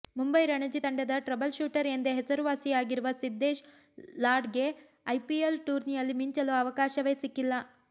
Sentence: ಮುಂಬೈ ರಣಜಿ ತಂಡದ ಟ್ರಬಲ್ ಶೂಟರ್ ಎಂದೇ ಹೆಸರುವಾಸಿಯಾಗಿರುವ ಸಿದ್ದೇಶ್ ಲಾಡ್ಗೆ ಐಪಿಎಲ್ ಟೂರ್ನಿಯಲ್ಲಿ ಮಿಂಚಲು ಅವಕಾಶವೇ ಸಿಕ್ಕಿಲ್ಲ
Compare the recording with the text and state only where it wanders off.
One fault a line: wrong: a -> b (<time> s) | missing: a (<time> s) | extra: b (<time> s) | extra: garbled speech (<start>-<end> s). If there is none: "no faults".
no faults